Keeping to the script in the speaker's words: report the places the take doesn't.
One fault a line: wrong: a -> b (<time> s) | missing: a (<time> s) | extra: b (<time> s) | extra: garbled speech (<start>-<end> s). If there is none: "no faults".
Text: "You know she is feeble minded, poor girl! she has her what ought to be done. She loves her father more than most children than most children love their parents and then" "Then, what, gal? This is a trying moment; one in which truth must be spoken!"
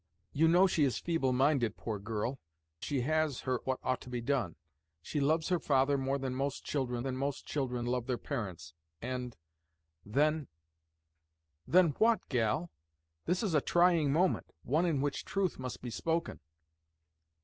no faults